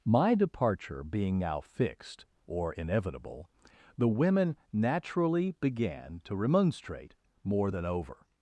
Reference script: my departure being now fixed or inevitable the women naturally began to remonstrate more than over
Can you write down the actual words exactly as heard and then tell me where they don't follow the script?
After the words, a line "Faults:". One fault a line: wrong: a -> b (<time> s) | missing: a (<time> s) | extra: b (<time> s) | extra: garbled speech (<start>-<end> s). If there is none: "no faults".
my departure being now fixed or inevitable the women naturally began to remonstrate more than over
Faults:
no faults